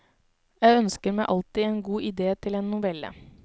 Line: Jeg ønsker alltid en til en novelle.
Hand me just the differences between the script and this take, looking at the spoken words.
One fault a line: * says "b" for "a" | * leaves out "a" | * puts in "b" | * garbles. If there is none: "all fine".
* puts in "meg"
* puts in "god idé"